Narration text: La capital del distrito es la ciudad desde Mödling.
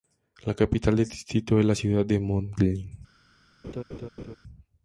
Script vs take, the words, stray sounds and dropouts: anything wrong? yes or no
yes